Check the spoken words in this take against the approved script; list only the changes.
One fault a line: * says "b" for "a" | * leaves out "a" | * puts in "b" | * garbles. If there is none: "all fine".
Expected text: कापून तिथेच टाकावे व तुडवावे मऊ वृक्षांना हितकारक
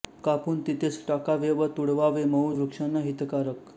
all fine